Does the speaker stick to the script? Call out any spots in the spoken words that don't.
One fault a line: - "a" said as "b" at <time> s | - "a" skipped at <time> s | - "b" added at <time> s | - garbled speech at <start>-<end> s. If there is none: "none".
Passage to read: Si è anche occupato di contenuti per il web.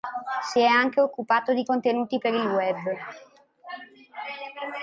none